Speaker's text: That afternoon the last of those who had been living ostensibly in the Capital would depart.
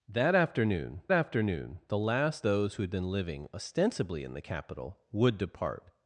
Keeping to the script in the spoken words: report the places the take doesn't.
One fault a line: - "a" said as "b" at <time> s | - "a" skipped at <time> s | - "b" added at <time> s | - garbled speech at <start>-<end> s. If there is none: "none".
- "afternoon" added at 1.1 s
- "of" skipped at 2.5 s